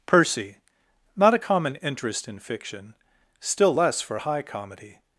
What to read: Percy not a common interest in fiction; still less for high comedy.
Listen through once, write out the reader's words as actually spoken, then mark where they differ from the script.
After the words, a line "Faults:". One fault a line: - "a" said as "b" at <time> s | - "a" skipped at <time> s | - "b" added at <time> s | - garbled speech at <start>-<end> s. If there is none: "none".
Percy not a common interest in fiction; still less for high comedy.
Faults:
none